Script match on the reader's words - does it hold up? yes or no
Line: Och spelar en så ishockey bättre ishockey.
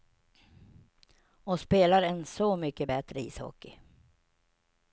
no